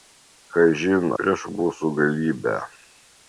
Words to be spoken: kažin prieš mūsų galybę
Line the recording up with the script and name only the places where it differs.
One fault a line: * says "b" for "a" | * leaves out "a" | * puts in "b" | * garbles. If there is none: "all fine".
all fine